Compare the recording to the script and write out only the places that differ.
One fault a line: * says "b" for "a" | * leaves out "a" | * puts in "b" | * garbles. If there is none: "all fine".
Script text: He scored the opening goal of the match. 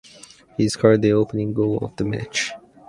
all fine